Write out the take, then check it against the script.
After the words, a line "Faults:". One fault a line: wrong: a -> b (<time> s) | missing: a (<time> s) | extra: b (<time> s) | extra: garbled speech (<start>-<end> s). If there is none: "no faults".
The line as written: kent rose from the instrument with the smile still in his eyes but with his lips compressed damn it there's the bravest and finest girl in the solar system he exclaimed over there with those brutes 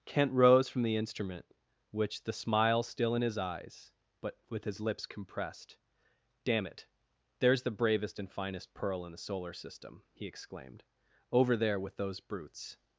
kent rose from the instrument which the smile still in his eyes but with his lips compressed damn it there's the bravest and finest pearl in the solar system he exclaimed over there with those brutes
Faults:
wrong: with -> which (1.9 s)
wrong: girl -> pearl (8.7 s)